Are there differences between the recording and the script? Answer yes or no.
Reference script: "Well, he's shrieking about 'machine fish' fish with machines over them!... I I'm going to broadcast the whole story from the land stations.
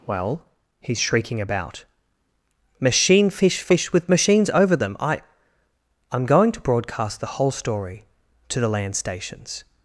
yes